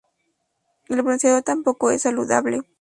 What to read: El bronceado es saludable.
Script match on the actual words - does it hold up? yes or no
no